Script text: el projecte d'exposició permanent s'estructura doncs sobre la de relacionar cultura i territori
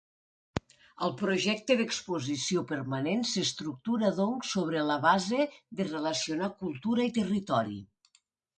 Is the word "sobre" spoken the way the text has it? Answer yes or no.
yes